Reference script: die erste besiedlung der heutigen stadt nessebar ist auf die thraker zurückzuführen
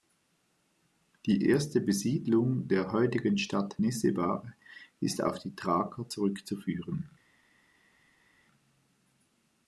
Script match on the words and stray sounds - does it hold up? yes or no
yes